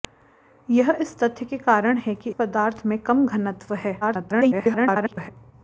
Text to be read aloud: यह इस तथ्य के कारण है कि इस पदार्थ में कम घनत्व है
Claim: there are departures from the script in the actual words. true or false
true